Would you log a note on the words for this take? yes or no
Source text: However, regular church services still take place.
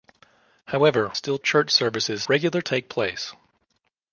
yes